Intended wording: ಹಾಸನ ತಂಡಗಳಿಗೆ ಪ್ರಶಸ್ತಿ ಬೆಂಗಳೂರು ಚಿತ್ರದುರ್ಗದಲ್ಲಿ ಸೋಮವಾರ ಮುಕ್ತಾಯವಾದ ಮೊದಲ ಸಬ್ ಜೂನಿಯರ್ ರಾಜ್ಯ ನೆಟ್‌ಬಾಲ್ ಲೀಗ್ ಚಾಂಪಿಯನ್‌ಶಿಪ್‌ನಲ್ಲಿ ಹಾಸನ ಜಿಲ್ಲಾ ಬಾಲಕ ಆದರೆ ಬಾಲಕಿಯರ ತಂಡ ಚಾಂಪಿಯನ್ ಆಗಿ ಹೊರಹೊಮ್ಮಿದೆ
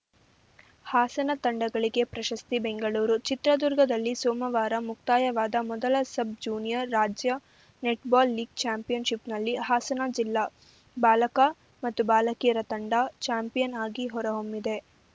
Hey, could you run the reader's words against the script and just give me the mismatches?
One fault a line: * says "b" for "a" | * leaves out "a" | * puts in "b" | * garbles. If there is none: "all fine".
* says "ಮತ್ತು" for "ಆದರೆ"